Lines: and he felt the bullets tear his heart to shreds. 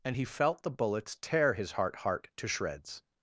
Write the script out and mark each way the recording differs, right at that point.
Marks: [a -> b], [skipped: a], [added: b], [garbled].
and he felt the bullets tear his heart [added: heart] to shreds.